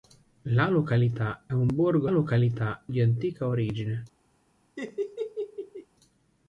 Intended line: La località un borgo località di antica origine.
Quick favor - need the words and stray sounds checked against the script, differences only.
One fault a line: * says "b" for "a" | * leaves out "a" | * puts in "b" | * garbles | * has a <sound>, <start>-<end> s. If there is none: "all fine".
* has a laugh, 4.8-5.9 s